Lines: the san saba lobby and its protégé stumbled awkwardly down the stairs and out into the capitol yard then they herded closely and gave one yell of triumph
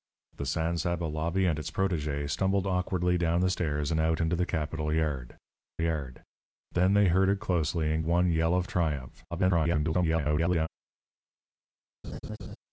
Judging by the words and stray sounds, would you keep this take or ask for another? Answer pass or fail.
fail